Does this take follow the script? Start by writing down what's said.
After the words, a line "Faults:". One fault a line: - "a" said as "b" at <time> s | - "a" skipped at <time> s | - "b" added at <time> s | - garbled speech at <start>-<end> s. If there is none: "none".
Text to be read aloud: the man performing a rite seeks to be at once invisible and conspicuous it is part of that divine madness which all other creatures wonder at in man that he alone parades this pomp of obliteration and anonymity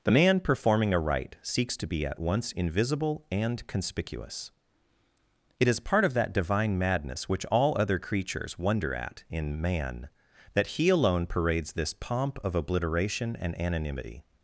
the man performing a rite seeks to be at once invisible and conspicuous it is part of that divine madness which all other creatures wonder at in man that he alone parades this pomp of obliteration and anonymity
Faults:
none